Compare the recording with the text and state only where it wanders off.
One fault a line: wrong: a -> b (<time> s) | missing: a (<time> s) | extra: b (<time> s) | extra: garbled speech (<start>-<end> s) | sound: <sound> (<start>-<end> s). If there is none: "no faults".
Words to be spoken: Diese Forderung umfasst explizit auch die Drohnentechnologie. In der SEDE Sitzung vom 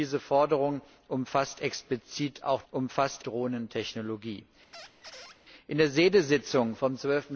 wrong: die -> umfasst (2.7 s)
sound: squeak (4.7-5.4 s)